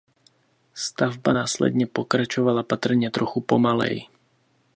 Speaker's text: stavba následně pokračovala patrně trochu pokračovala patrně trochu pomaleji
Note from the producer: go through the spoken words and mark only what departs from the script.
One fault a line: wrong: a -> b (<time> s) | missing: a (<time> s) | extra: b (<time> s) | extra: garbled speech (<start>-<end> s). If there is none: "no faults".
missing: pokračovala patrně trochu (3.4 s)